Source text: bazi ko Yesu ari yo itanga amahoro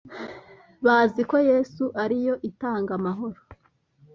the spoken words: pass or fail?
pass